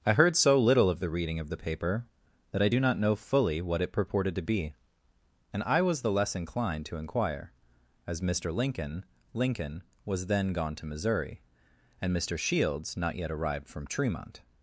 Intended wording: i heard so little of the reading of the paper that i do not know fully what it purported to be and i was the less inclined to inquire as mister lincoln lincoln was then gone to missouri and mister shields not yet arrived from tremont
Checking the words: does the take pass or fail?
pass